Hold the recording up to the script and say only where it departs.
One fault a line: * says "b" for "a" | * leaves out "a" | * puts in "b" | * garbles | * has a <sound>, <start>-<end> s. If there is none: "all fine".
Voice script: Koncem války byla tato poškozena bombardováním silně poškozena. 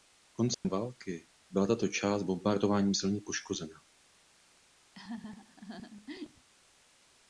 * has a dropout, 0.5-0.6 s
* says "část" for "poškozena"
* has a laugh, 4.9-6.5 s